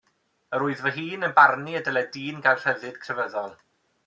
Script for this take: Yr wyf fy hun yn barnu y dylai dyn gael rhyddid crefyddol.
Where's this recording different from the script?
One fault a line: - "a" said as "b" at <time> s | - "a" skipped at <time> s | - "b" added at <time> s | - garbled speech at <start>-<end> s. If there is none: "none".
none